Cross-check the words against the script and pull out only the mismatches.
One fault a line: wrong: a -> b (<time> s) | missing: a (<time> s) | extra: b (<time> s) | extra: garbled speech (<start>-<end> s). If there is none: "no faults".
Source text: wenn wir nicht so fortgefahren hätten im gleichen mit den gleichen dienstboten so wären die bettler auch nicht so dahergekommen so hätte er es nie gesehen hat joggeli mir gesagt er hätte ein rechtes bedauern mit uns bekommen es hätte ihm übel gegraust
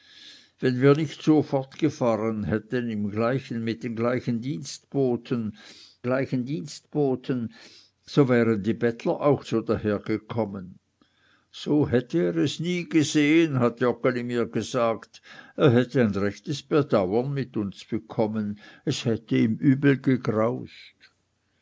extra: gleichen dienstboten (6.0 s)
missing: nicht (9.5 s)